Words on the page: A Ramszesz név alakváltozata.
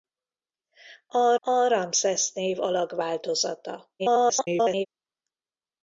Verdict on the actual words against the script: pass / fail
fail